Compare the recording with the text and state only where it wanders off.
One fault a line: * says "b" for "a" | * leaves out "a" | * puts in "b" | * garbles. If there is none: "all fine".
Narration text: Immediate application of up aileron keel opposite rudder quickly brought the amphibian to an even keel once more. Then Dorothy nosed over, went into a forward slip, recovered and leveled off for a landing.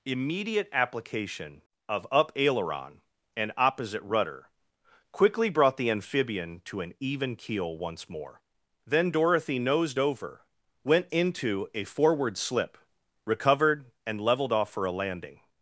* says "and" for "keel"